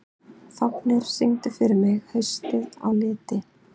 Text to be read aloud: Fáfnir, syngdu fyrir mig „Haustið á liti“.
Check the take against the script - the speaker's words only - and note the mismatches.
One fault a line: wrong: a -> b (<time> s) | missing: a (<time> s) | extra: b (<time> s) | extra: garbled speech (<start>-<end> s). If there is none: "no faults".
no faults